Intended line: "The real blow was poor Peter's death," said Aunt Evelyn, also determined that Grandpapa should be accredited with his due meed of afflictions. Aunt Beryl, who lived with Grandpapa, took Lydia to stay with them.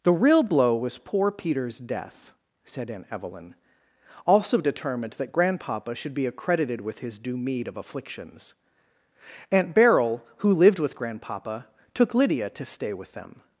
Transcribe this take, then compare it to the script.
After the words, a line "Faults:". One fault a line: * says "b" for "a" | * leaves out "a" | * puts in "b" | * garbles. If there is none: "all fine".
"The real blow was poor Peter's death," said Aunt Evelyn, also determined that Grandpapa should be accredited with his due meed of afflictions. Aunt Beryl, who lived with Grandpapa, took Lydia to stay with them.
Faults:
all fine